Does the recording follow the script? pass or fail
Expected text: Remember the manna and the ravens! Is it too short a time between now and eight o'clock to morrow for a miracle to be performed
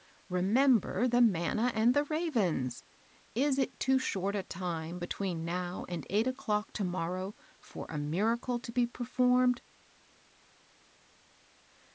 pass